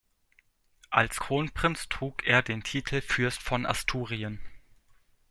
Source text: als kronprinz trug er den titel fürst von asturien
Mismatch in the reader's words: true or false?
false